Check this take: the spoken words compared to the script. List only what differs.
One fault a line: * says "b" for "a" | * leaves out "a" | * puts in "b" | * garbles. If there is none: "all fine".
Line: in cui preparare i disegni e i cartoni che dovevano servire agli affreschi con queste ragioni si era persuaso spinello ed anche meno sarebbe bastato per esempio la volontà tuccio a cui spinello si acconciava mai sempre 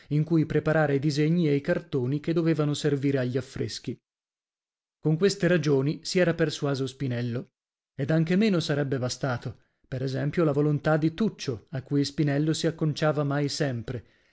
* puts in "di"